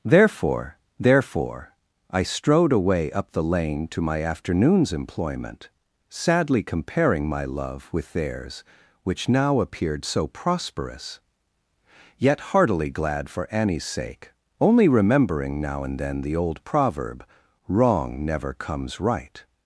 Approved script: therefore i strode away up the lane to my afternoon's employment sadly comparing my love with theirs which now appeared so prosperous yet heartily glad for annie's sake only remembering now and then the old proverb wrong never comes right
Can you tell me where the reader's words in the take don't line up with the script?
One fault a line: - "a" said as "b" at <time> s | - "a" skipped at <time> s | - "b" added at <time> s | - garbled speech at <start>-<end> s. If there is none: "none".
- "therefore" added at 1.0 s